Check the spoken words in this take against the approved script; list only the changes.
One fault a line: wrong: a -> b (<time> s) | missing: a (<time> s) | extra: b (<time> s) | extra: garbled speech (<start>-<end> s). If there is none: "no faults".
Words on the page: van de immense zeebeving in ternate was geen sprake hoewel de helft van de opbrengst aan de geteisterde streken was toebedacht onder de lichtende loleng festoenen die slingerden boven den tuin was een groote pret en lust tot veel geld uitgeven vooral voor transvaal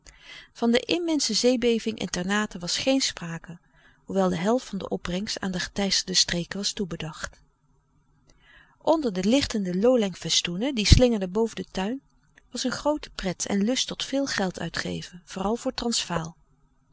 no faults